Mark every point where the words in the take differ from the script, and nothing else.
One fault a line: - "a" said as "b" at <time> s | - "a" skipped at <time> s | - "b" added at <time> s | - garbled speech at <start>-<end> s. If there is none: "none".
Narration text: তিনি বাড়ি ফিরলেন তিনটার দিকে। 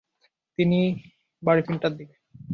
- "ফিরলেন" skipped at 1.6 s